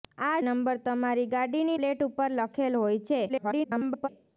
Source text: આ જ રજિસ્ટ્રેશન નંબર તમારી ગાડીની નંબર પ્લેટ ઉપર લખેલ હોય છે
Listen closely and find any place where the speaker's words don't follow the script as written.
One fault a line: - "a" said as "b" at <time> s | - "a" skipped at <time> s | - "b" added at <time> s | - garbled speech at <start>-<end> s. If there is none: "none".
- "જ રજિસ્ટ્રેશન" skipped at 0.4 s
- "નંબર" skipped at 1.8 s
- garbled speech at 3.3-4.1 s